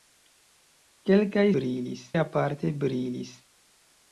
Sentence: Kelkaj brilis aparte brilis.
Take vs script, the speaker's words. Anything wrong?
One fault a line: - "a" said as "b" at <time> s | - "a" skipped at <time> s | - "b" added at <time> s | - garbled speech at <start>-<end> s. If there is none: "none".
none